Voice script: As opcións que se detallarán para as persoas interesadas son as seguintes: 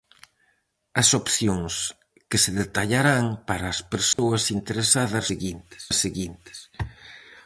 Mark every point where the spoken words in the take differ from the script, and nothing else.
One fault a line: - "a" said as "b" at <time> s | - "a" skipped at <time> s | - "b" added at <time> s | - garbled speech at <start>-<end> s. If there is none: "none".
- "son" said as "seguintes" at 5.3 s